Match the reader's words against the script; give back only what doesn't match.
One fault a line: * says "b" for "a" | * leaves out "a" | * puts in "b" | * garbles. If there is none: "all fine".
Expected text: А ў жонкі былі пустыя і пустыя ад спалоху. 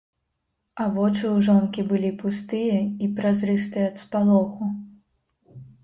* puts in "вочы"
* says "празрыстыя" for "пустыя"